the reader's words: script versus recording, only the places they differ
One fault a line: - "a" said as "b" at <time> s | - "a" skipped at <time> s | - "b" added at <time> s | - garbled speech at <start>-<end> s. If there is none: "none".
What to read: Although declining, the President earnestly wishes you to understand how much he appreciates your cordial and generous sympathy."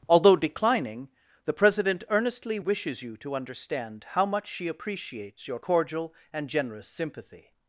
- "he" said as "she" at 4.5 s